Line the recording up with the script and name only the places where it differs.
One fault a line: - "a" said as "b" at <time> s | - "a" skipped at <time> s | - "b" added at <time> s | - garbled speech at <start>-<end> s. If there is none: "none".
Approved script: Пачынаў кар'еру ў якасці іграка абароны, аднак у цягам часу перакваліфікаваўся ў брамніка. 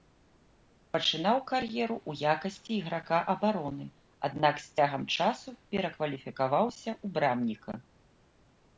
- "у" said as "з" at 4.6 s